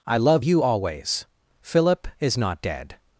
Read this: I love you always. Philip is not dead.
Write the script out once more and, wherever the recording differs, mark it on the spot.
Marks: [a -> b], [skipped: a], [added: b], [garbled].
I love you always. Philip is not dead.